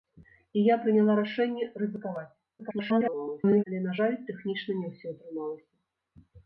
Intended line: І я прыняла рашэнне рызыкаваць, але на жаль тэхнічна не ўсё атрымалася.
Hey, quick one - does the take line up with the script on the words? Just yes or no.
no